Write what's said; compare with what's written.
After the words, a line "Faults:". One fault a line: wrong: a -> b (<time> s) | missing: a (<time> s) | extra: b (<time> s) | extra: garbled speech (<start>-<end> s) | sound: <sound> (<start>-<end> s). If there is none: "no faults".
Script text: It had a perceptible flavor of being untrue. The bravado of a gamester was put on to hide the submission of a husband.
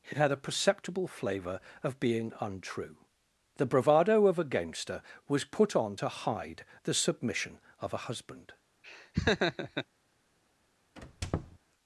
It had a perceptible flavor of being untrue. The bravado of a gamester was put on to hide the submission of a husband.
Faults:
sound: laugh (8.8-9.9 s)
sound: squeak (11.0-11.6 s)